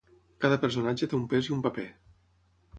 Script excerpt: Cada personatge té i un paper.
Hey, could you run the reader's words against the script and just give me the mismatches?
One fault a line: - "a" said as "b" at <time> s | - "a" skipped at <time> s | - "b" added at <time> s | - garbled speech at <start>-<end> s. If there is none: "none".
- "un pes" added at 1.2 s